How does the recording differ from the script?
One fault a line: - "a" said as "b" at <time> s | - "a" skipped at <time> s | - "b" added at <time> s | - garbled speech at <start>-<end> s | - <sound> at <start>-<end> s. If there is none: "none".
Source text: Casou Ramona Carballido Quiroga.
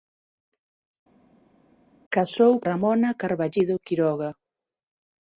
none